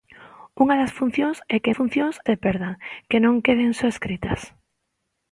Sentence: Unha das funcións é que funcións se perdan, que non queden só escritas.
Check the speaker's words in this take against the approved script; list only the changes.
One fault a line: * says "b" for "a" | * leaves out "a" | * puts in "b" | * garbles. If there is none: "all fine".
all fine